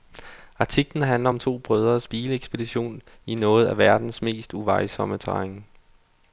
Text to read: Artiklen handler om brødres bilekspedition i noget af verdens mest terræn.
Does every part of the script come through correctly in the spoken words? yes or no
no